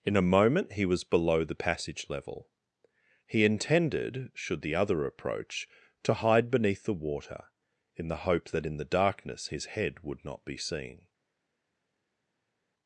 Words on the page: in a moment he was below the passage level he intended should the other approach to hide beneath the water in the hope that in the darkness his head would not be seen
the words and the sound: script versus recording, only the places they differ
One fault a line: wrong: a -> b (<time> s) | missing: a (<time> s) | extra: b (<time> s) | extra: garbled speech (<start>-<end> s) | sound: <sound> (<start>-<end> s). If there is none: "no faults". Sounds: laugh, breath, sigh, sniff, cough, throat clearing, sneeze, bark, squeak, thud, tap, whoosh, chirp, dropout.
no faults